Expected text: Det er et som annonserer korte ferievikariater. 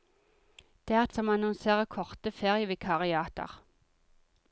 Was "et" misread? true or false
false